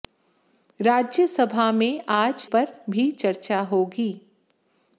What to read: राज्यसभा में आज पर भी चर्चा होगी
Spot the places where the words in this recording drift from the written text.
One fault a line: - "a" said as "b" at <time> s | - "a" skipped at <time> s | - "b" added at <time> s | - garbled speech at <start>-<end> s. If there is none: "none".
none